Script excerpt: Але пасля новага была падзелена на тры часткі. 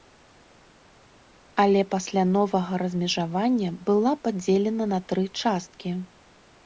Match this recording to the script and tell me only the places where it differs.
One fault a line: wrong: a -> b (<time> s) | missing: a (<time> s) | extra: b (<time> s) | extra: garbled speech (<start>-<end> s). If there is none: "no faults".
extra: размежавання (2.9 s)